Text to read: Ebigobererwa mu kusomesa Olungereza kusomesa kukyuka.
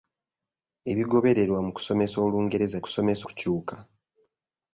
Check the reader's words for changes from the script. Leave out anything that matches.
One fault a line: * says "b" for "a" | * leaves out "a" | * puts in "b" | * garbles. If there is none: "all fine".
all fine